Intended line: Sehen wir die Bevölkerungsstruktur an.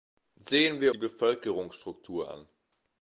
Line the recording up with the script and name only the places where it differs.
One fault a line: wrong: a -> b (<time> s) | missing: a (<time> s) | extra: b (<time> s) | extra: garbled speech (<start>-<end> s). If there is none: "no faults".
no faults